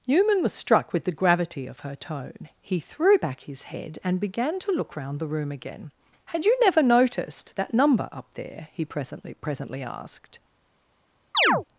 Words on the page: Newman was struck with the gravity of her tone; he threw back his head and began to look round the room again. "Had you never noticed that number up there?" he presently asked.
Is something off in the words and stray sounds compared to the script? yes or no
yes